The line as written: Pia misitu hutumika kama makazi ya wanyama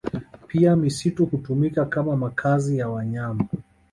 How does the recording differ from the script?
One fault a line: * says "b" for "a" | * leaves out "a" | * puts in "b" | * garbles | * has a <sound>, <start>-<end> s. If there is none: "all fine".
all fine